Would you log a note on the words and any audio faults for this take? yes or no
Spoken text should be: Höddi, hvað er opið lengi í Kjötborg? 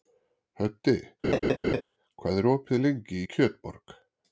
yes